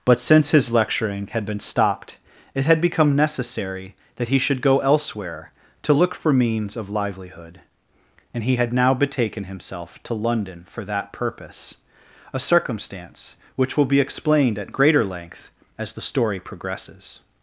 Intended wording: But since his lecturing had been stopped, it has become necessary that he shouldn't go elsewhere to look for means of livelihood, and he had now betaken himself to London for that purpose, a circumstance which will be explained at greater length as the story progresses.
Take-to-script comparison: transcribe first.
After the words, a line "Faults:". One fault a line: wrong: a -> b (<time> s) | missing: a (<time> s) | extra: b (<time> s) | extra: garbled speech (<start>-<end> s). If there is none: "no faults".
But since his lecturing had been stopped, it had become necessary that he should go elsewhere to look for means of livelihood, and he had now betaken himself to London for that purpose, a circumstance which will be explained at greater length as the story progresses.
Faults:
wrong: has -> had (2.6 s)
wrong: shouldn't -> should (4.4 s)